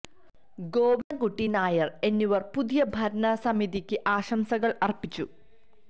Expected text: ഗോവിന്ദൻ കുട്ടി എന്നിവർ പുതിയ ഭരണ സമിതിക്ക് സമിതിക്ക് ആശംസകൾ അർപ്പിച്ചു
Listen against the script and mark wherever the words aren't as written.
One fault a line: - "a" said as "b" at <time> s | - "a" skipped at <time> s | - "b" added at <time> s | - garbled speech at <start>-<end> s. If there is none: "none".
- "നായർ" added at 1.5 s
- "സമിതിക്ക്" skipped at 4.0 s